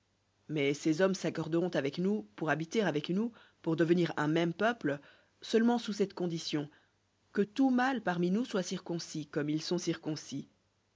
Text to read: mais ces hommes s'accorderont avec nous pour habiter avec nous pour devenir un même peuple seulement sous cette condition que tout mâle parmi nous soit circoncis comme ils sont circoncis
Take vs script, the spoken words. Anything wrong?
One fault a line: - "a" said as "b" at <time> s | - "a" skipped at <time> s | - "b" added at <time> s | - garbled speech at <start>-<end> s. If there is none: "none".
none